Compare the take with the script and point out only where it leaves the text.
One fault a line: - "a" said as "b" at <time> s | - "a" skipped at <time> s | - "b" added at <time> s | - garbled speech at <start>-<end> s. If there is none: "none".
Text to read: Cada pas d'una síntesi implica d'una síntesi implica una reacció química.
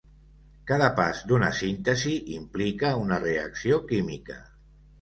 - "d'una síntesi implica" skipped at 3.0 s